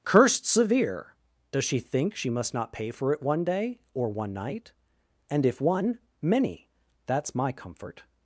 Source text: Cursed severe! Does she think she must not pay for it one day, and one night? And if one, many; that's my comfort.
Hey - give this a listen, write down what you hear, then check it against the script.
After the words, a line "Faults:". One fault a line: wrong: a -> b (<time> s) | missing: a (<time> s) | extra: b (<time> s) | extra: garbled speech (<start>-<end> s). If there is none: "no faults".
Cursed severe! Does she think she must not pay for it one day, or one night? And if one, many; that's my comfort.
Faults:
wrong: and -> or (3.9 s)